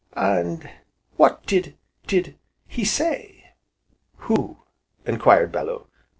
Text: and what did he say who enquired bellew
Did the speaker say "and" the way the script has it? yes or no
yes